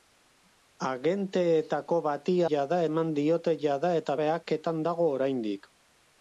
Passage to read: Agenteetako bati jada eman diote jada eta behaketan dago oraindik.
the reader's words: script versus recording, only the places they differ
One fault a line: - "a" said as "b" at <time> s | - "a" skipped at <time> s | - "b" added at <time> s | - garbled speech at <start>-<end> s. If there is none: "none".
none